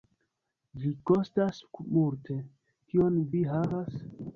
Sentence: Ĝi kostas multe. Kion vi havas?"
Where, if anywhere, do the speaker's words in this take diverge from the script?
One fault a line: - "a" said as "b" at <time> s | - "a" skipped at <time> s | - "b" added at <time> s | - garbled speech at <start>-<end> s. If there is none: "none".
none